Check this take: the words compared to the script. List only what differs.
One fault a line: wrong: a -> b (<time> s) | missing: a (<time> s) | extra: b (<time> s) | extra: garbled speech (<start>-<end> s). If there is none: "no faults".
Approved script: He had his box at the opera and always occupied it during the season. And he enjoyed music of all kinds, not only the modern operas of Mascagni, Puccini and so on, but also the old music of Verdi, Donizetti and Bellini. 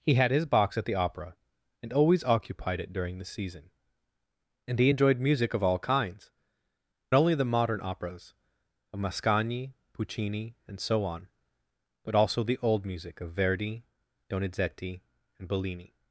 missing: not (6.3 s)